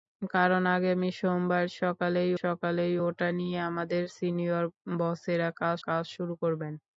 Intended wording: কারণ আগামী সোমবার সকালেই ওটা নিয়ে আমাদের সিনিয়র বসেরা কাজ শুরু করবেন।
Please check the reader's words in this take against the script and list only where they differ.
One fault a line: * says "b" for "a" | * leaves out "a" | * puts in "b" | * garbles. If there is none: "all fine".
* puts in "সকালেই"
* puts in "কাজ"